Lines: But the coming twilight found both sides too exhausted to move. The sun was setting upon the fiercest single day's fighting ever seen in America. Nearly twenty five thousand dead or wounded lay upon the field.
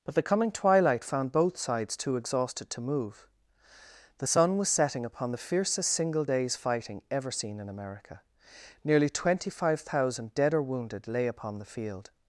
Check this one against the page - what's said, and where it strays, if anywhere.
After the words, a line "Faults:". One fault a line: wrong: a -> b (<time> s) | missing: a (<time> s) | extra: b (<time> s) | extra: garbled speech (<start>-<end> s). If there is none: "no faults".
But the coming twilight found both sides too exhausted to move. The sun was setting upon the fiercest single day's fighting ever seen in America. Nearly twenty five thousand dead or wounded lay upon the field.
Faults:
no faults